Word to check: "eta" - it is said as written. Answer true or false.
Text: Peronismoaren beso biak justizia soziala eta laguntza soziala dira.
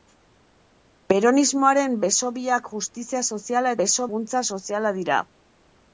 false